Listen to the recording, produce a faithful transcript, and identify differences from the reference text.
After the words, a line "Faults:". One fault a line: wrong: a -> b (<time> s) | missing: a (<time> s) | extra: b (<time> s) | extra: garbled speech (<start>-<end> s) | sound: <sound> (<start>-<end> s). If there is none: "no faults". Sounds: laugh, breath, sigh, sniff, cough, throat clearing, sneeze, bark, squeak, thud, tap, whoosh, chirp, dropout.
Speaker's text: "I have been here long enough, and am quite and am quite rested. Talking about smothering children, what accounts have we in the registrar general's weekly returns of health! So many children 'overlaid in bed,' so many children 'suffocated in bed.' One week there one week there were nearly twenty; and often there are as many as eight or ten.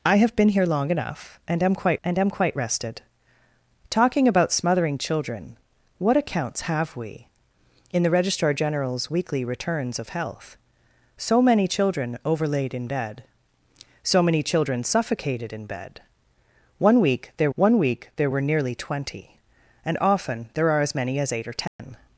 "I have been here long enough, and am quite and am quite rested. Talking about smothering children, what accounts have we in the registrar general's weekly returns of health! So many children 'overlaid in bed,' so many children 'suffocated in bed.' One week there one week there were nearly twenty; and often there are as many as eight or ten.
Faults:
sound: dropout (21.7-21.8 s)